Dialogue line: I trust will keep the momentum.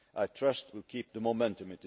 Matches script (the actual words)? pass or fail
pass